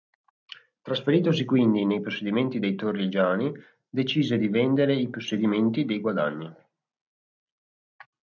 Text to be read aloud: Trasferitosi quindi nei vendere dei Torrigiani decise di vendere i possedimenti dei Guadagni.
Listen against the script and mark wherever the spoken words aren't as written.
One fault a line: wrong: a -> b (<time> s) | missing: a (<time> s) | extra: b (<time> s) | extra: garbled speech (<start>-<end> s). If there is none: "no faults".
wrong: vendere -> possedimenti (2.0 s)